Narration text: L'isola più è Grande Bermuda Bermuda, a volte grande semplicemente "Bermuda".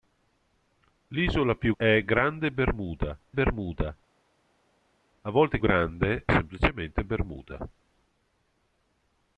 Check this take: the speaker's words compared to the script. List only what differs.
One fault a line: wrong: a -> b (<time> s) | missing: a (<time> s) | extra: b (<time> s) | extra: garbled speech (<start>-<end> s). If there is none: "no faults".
no faults